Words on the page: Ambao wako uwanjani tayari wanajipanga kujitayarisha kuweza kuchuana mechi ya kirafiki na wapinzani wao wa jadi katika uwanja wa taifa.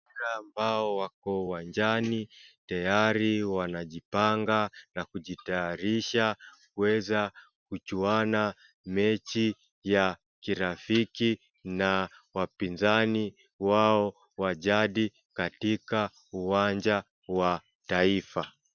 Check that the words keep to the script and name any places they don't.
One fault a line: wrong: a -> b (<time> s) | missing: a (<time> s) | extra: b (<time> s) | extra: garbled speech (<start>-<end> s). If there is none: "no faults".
extra: na (4.9 s)